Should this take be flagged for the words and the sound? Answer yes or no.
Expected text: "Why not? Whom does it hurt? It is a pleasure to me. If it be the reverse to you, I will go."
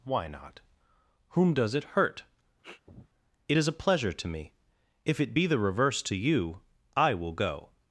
yes